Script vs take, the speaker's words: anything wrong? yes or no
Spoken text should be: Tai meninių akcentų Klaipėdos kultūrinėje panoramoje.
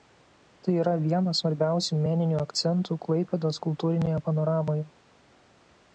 yes